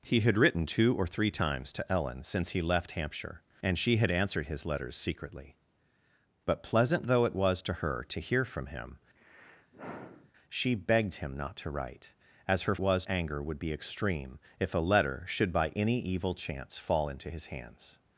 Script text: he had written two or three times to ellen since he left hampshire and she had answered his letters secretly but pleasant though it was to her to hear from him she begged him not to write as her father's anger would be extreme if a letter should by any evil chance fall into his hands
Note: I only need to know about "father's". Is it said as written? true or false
false